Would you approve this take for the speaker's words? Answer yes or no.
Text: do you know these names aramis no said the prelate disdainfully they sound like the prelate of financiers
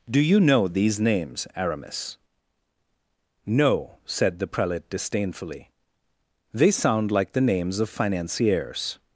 no